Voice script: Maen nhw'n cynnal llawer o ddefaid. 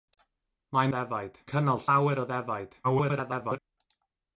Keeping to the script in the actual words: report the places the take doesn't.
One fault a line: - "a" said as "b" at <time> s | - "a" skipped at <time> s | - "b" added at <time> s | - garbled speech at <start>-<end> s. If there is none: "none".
- "nhw'n" said as "ddefaid" at 1.0 s
- garbled speech at 2.8-3.6 s